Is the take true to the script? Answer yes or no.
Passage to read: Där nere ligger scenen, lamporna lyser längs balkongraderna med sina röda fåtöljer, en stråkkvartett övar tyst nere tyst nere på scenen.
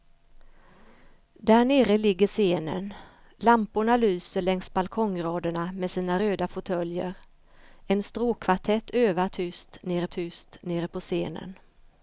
yes